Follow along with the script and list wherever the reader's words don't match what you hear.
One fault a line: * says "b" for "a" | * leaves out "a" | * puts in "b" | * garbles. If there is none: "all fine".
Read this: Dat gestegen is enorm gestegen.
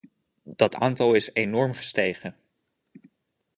* says "aantal" for "gestegen"